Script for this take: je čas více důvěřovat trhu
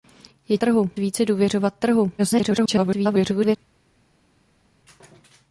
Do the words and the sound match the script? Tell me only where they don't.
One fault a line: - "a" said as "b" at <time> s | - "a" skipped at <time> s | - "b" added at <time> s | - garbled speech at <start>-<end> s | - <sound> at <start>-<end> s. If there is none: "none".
- "čas" said as "trhu" at 0.6 s
- garbled speech at 2.2-3.6 s